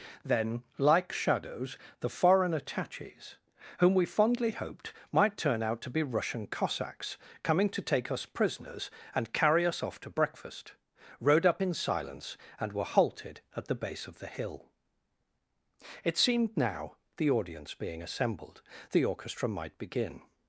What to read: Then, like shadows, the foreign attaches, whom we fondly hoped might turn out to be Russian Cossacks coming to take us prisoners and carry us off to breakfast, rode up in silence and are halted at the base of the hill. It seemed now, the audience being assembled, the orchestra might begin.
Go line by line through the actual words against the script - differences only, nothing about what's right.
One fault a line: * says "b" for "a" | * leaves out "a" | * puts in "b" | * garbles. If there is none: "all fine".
* says "were" for "are"